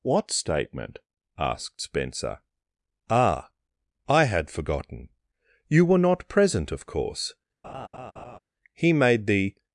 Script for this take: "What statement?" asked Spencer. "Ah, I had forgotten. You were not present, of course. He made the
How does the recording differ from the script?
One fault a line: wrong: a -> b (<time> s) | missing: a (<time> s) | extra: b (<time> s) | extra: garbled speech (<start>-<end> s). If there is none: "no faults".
no faults